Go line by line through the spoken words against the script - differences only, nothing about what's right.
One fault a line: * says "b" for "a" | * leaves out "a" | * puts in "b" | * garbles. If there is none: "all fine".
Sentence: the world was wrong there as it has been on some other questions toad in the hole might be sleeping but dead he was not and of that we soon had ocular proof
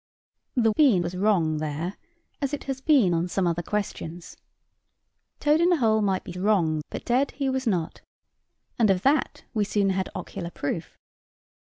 * says "been" for "world"
* says "wrong" for "sleeping"